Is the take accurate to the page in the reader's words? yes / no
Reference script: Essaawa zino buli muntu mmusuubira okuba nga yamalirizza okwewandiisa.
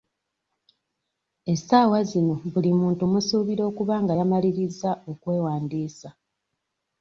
yes